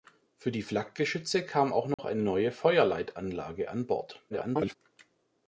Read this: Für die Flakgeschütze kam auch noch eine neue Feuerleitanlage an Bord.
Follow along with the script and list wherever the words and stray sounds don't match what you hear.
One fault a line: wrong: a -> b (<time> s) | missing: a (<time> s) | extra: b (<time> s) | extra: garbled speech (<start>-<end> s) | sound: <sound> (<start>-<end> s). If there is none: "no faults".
sound: dropout (1.9-2.0 s)
extra: garbled speech (4.3-4.8 s)